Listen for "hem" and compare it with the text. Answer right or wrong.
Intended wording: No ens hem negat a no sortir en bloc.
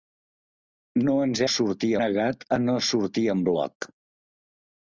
wrong